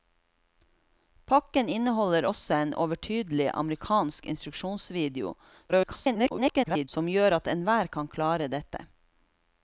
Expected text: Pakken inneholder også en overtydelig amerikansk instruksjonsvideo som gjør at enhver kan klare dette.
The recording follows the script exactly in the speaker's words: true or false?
false